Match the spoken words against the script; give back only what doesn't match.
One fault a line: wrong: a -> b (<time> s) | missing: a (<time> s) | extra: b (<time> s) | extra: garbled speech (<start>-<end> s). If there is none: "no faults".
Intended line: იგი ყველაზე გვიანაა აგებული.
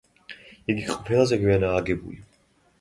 no faults